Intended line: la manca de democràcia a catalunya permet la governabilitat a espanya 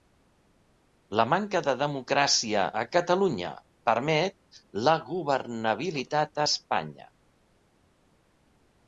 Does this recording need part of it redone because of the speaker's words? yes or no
no